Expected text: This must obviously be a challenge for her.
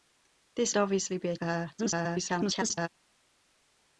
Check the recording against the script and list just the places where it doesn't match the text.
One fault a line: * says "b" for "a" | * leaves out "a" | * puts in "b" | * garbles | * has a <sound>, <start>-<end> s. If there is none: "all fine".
* leaves out "must"
* leaves out "challenge"
* garbles